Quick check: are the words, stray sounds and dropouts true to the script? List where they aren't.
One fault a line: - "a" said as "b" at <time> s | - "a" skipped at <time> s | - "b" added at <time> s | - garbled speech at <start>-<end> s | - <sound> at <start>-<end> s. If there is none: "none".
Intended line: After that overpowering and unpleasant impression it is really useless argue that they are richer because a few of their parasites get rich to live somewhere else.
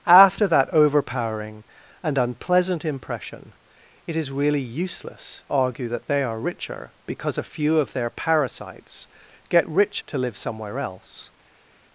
none